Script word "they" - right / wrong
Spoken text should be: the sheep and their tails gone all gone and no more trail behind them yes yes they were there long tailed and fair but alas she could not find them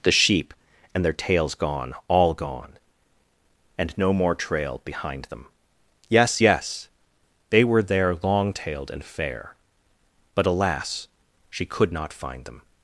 right